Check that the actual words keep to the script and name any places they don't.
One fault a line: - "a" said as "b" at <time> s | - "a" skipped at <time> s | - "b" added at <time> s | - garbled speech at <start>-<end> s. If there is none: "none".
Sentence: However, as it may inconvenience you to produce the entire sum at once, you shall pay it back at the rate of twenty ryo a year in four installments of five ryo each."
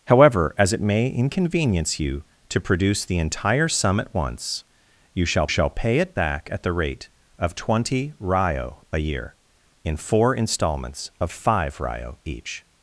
- "shall" added at 5.5 s